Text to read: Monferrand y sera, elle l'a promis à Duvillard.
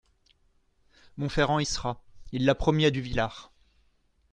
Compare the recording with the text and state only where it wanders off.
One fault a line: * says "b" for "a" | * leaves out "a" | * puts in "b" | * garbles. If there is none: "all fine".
* says "il" for "elle"